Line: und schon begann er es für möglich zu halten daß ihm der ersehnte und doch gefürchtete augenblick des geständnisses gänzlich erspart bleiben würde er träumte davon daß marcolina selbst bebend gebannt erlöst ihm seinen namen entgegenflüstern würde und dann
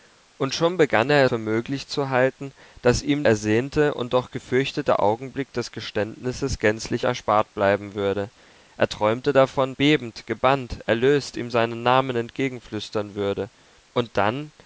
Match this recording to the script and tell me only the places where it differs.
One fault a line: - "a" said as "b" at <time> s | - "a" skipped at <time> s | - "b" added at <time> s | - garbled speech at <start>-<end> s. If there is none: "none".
- "es" skipped at 1.2 s
- "der" skipped at 3.2 s
- "daß marcolina selbst" skipped at 9.7 s